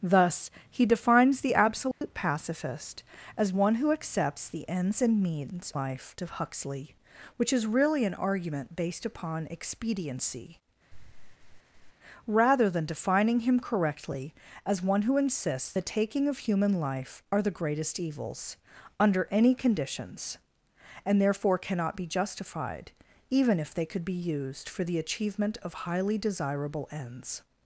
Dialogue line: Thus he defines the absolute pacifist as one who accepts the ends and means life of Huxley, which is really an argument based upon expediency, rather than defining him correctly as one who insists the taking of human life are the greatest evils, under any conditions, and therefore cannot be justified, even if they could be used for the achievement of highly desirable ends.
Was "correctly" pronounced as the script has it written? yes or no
yes